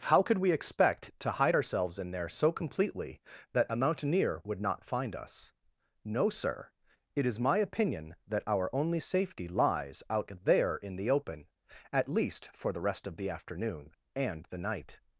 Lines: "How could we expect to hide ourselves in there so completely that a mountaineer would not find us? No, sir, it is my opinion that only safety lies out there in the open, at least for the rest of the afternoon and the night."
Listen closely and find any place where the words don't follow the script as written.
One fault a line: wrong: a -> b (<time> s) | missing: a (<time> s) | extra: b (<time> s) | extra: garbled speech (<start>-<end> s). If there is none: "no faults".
extra: our (8.5 s)